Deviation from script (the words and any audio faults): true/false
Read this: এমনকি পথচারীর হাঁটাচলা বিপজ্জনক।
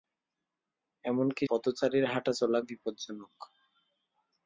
false